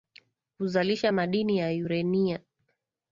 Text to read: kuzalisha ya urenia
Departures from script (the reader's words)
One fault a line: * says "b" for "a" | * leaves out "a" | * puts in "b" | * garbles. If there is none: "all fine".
* puts in "madini"